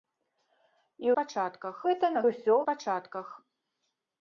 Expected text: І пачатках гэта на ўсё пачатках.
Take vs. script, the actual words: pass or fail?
pass